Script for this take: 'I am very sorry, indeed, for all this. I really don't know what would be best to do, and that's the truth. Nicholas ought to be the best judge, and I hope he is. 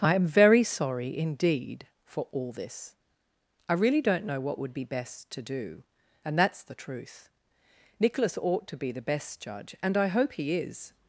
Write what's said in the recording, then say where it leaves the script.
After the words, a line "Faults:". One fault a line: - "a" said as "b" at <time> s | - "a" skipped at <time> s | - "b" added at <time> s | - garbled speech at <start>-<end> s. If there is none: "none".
'I am very sorry, indeed, for all this. I really don't know what would be best to do, and that's the truth. Nicholas ought to be the best judge, and I hope he is.
Faults:
none